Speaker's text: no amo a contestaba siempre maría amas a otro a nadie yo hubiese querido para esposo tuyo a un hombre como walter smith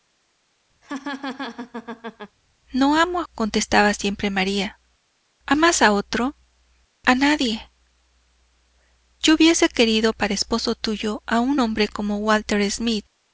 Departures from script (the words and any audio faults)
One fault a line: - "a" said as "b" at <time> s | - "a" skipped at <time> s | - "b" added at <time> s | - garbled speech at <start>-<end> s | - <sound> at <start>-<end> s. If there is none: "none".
- laugh at 0.8-2.4 s